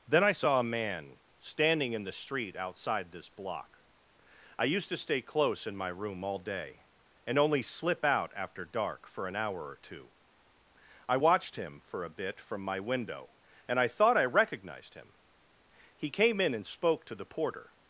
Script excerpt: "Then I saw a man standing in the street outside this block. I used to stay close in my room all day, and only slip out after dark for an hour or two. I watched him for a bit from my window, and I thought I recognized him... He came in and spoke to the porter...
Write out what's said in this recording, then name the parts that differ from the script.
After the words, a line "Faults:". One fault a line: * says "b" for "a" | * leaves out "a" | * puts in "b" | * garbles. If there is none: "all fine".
"Then I saw a man standing in the street outside this block. I used to stay close in my room all day, and only slip out after dark for an hour or two. I watched him for a bit from my window, and I thought I recognized him... He came in and spoke to the porter...
Faults:
all fine